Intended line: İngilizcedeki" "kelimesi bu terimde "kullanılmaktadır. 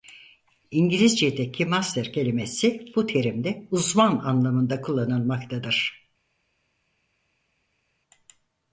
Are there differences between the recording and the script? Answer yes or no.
yes